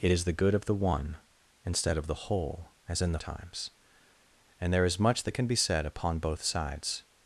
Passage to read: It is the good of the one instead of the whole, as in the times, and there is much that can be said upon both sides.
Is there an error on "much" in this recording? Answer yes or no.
no